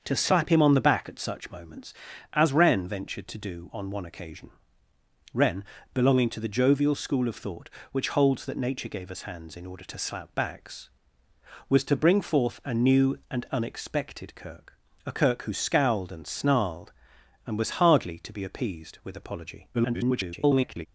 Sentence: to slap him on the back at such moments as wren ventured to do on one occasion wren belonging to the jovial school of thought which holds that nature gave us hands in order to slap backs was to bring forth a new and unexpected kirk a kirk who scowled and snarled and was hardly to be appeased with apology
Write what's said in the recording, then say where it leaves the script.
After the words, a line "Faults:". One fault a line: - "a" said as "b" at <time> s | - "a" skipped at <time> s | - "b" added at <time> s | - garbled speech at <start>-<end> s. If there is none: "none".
to slap him on the back at such moments as wren ventured to do on one occasion wren belonging to the jovial school of thought which holds that nature gave us hands in order to slap backs was to bring forth a new and unexpected kirk a kirk who scowled and snarled and was hardly to be appeased with apology [garbled]
Faults:
- garbled speech at 19.7-20.9 s